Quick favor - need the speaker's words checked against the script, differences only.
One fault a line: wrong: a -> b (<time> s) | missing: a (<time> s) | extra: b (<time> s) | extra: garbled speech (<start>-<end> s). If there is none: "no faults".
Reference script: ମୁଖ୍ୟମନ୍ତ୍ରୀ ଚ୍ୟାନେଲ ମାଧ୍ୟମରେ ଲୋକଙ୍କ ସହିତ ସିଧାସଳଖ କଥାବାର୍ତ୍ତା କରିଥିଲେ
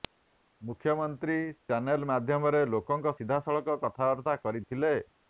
missing: ସହିତ (3.1 s)